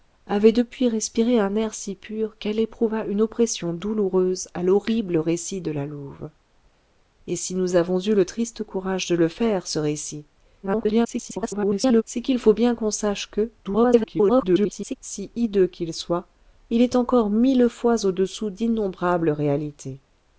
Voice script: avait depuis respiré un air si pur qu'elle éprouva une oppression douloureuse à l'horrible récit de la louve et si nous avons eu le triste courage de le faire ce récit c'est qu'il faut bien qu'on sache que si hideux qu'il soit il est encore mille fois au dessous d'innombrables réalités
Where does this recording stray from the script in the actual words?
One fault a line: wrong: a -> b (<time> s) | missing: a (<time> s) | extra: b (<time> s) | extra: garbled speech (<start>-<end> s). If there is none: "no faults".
extra: garbled speech (10.6-12.0 s)
extra: garbled speech (13.6-15.0 s)